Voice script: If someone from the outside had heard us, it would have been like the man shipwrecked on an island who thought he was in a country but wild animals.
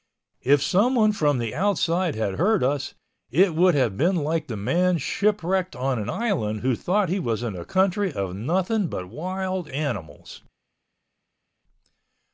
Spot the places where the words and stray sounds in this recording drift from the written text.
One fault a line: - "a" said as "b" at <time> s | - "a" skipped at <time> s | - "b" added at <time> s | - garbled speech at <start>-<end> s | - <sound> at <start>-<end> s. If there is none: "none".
- "of nothing" added at 8.1 s